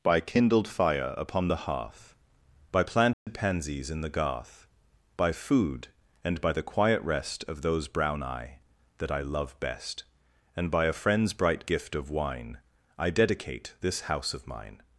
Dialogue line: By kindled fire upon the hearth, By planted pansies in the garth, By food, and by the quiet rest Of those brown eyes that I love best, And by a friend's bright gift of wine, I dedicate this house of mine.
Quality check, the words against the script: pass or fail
fail